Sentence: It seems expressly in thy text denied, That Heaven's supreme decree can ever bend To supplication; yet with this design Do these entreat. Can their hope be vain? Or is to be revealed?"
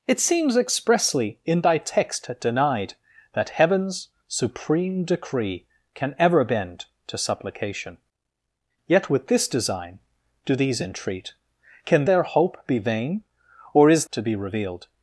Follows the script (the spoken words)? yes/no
yes